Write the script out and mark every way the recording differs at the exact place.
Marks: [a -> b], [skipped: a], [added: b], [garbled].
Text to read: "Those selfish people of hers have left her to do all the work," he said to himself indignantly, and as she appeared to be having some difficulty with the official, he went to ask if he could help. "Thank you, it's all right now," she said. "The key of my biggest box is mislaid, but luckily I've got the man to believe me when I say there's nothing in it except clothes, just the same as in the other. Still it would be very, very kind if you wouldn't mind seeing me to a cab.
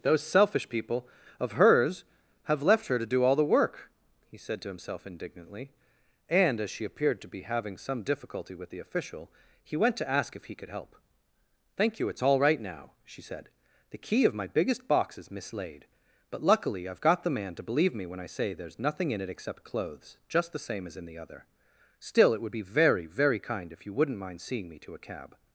"Those selfish people of hers have left her to do all the work," he said to himself indignantly, and as she appeared to be having some difficulty with the official, he went to ask if he could help. "Thank you, it's all right now," she said. "The key of my biggest box is mislaid, but luckily I've got the man to believe me when I say there's nothing in it except clothes, just the same as in the other. Still it would be very, very kind if you wouldn't mind seeing me to a cab.